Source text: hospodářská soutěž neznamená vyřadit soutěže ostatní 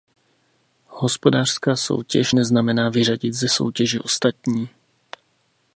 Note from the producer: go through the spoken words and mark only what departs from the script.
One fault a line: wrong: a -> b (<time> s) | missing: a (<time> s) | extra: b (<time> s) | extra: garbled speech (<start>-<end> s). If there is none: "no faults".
extra: ze (3.3 s)